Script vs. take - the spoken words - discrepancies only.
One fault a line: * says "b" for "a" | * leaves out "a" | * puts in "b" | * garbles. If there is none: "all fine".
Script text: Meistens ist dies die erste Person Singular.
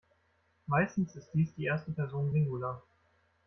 all fine